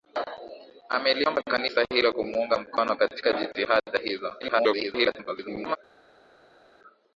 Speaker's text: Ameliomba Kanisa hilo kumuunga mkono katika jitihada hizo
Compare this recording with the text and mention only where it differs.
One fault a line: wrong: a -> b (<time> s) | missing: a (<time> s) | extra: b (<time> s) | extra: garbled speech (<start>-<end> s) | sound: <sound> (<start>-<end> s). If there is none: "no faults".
extra: garbled speech (4.4-5.8 s)